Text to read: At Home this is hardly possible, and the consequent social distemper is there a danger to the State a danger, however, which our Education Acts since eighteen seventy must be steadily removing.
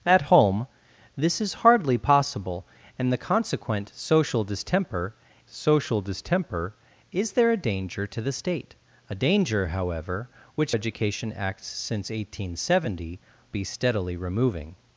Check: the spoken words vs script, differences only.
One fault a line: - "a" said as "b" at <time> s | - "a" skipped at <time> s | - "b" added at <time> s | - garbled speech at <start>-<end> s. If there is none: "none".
- "social distemper" added at 5.5 s
- "our" skipped at 10.7 s
- "must" skipped at 13.2 s